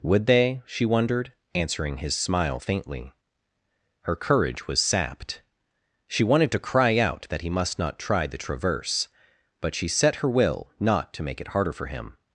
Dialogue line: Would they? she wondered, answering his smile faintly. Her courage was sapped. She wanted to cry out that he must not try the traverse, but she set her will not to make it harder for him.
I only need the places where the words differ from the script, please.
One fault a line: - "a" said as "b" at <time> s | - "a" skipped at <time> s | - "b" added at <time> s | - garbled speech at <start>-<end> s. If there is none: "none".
none